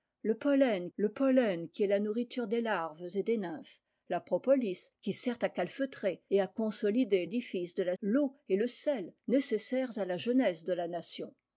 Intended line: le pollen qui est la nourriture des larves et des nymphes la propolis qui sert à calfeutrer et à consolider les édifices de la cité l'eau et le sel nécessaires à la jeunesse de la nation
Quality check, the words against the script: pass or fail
fail